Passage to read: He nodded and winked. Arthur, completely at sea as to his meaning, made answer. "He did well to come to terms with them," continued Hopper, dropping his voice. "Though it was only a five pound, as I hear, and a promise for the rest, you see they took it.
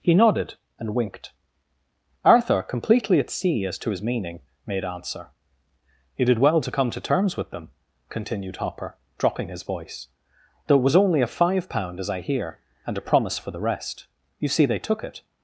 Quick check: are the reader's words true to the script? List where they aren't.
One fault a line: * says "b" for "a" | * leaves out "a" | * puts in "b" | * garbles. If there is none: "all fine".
all fine